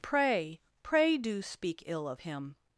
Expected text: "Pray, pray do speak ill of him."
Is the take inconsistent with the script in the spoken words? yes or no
no